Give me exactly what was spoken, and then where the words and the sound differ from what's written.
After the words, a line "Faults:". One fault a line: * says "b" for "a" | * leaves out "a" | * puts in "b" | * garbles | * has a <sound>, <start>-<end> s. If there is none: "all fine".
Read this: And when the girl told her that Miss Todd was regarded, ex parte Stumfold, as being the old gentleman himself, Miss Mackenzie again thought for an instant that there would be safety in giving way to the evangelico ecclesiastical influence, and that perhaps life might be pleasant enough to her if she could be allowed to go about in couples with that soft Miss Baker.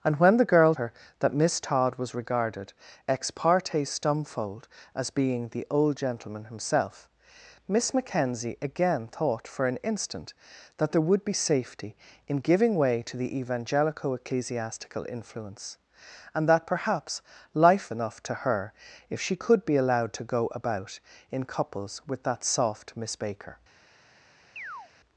And when the girl her that Miss Todd was regarded, ex parte Stumfold, as being the old gentleman himself, Miss Mackenzie again thought for an instant that there would be safety in giving way to the evangelico ecclesiastical influence, and that perhaps life enough to her if she could be allowed to go about in couples with that soft Miss Baker.
Faults:
* leaves out "told"
* leaves out "might be pleasant"
* has a chirp, 24.6-24.9 s